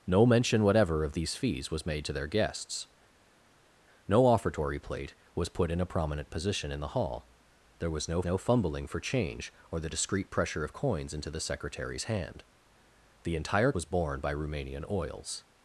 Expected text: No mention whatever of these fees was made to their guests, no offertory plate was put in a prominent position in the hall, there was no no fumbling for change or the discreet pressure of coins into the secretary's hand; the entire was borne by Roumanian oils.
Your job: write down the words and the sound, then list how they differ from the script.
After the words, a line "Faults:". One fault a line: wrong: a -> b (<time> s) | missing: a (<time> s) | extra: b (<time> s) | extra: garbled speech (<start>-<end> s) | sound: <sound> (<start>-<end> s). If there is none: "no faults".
No mention whatever of these fees was made to their guests, no offertory plate was put in a prominent position in the hall, there was no no fumbling for change or the discreet pressure of coins into the secretary's hand; the entire was borne by Roumanian oils.
Faults:
no faults